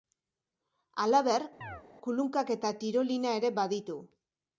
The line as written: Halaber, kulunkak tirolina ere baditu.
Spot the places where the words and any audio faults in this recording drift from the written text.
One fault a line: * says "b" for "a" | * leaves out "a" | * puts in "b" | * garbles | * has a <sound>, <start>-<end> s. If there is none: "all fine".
* has a chirp, 1.6-1.8 s
* puts in "eta"